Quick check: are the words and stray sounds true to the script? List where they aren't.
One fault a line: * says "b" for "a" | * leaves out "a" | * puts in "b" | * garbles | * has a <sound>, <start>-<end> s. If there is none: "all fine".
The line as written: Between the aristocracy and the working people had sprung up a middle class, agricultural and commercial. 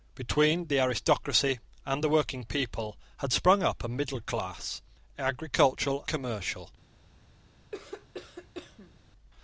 * leaves out "and"
* has a cough, 7.7-9.0 s